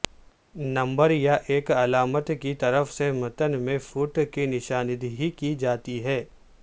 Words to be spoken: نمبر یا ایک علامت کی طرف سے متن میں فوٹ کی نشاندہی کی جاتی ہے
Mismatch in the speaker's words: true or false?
false